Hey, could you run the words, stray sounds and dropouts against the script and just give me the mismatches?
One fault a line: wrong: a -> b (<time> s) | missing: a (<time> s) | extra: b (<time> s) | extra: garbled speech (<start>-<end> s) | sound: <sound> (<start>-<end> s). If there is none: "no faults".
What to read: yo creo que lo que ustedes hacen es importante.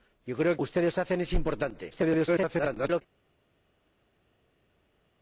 missing: que lo que (0.6 s)
extra: garbled speech (1.9-3.0 s)